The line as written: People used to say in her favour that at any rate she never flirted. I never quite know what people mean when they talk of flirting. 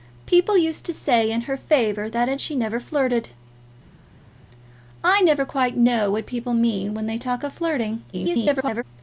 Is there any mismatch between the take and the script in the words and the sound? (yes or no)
yes